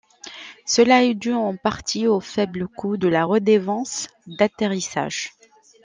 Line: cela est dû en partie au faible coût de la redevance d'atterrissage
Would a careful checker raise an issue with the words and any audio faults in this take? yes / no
no